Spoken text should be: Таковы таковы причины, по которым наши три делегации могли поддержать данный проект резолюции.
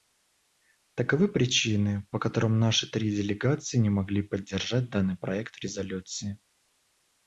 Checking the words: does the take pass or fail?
fail